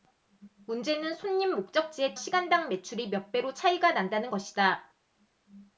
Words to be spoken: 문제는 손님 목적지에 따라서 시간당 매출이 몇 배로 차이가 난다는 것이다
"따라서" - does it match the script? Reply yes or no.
no